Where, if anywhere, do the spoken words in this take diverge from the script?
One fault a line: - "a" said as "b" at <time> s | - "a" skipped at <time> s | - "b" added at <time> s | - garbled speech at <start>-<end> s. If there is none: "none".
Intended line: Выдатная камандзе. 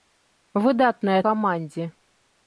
none